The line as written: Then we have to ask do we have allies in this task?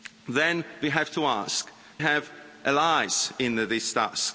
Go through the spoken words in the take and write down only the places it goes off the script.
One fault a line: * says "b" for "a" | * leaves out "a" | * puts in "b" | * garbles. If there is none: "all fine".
* leaves out "do we"